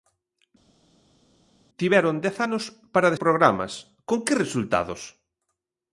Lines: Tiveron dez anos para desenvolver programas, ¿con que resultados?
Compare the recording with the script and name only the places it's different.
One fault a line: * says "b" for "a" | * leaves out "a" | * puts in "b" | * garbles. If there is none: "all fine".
* leaves out "desenvolver"